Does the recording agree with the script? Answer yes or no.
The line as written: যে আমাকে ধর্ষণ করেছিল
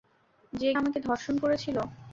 yes